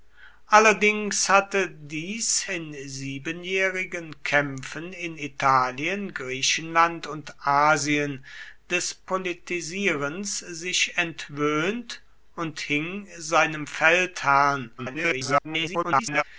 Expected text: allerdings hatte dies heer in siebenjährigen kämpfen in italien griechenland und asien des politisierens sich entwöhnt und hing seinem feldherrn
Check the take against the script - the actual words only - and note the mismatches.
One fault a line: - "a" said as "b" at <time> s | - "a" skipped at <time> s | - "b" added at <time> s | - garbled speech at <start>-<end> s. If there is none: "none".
- "heer" skipped at 2.5 s
- garbled speech at 14.8-16.2 s